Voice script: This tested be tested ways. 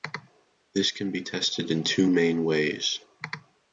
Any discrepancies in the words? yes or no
yes